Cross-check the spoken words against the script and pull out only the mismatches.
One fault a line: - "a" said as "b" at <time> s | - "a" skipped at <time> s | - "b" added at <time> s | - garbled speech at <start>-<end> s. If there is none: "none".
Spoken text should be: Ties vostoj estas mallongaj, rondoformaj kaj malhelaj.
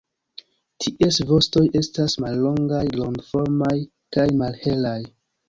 none